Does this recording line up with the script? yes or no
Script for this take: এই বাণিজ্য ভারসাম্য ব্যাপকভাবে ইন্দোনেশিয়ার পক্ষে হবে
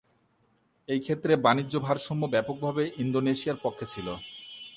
no